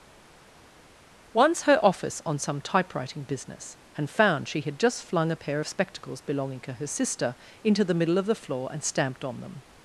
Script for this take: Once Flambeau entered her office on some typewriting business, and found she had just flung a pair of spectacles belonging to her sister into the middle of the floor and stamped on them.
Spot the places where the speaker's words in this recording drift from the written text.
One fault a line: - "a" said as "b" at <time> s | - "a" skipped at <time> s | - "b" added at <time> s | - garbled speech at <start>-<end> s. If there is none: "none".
- "Flambeau entered" skipped at 1.6 s